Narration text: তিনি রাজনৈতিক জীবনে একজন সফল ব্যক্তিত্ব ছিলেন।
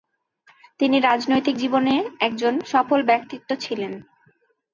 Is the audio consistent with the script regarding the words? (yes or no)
yes